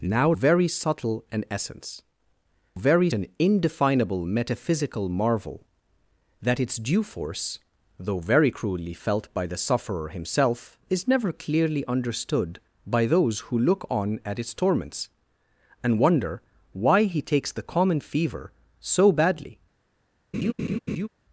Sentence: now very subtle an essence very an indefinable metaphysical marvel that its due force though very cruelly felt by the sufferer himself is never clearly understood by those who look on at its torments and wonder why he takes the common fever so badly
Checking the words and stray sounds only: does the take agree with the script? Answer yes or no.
no